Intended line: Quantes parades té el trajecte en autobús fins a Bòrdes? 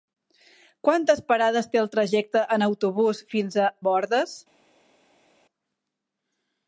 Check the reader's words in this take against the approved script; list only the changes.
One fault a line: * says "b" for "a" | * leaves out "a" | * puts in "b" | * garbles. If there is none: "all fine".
all fine